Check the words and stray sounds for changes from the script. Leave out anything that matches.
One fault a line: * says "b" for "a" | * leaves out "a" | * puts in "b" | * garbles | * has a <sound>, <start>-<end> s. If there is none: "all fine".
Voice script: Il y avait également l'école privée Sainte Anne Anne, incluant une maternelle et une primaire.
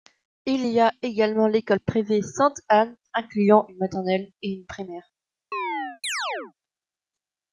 * says "a" for "avait"
* leaves out "Anne"
* has a chirp, 5.5-6.5 s